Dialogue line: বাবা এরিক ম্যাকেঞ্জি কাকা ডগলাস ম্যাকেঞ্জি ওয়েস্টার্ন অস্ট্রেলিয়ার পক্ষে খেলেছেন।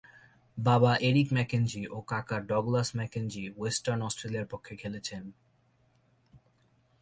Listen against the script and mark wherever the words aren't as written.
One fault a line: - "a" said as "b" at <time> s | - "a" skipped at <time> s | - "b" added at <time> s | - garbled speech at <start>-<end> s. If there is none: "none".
- "ও" added at 1.9 s